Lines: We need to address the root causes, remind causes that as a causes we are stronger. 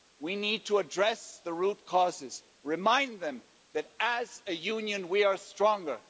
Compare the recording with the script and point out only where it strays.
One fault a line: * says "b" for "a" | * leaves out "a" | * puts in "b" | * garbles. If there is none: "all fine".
* says "them" for "causes"
* says "union" for "causes"